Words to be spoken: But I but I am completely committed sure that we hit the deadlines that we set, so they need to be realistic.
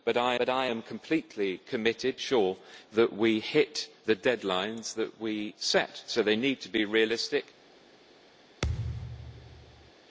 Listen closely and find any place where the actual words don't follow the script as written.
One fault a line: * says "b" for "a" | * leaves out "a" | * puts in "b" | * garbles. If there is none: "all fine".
all fine